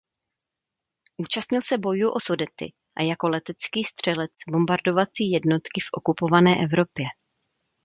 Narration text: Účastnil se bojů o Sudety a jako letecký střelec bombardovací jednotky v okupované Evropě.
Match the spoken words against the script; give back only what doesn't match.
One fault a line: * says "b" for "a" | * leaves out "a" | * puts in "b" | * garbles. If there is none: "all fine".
all fine